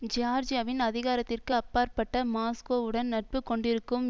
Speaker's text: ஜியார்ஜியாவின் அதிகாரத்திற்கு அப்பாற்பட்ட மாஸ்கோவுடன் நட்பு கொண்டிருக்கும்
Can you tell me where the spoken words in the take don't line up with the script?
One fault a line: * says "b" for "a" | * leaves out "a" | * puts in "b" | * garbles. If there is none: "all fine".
all fine